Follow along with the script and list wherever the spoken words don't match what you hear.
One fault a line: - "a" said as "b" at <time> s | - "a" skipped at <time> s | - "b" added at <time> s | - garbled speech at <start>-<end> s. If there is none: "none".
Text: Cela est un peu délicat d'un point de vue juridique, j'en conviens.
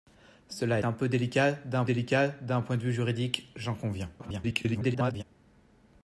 - "est" skipped at 0.8 s
- "délicat d'un" added at 1.8 s
- garbled speech at 4.2-5.2 s